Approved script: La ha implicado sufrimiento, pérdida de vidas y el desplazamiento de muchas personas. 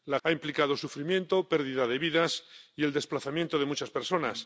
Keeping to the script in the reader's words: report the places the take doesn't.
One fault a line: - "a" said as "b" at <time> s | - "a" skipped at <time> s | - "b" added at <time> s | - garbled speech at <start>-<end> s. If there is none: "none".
none